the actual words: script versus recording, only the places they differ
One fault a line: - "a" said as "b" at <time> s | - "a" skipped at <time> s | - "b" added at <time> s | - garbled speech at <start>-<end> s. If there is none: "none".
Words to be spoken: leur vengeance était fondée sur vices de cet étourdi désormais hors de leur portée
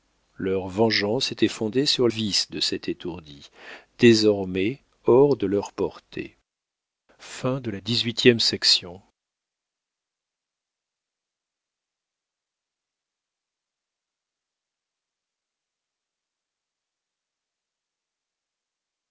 none